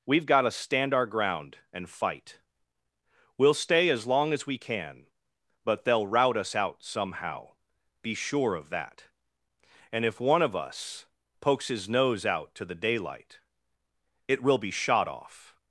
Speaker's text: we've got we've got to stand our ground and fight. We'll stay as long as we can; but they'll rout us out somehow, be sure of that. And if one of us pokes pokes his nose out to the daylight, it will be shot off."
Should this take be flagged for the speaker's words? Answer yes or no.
yes